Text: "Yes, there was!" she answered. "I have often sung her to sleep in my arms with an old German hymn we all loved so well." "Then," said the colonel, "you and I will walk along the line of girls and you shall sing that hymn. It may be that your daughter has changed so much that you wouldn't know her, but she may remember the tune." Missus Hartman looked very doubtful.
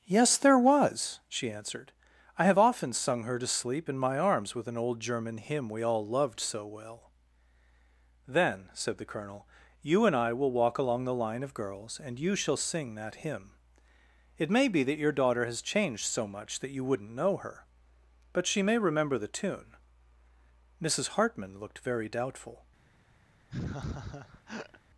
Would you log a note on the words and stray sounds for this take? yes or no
yes